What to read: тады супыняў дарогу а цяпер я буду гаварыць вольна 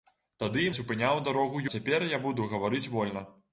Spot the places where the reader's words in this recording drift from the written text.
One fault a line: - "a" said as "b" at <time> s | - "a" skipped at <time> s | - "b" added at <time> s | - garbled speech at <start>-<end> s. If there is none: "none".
none